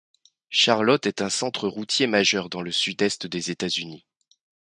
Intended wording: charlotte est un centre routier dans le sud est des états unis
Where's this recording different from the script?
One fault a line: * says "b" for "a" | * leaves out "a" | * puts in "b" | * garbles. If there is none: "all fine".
* puts in "majeur"